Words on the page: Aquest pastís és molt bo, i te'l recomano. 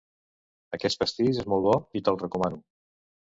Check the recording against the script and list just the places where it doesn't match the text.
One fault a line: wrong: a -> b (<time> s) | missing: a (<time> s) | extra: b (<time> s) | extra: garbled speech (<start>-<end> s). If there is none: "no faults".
no faults